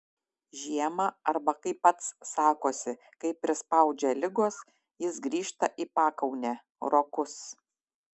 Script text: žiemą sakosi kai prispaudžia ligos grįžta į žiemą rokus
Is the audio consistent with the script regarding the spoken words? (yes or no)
no